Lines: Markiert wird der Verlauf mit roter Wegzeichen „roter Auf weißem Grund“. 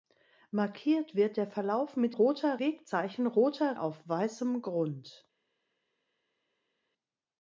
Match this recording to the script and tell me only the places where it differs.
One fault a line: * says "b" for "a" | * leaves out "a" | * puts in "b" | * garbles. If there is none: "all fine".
all fine